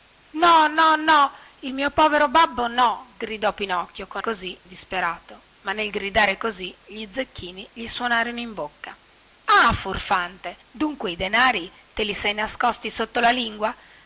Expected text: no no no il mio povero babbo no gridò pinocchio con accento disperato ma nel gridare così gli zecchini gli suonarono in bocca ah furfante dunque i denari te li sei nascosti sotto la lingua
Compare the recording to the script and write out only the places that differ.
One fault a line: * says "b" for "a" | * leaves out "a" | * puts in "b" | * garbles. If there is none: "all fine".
* says "così" for "accento"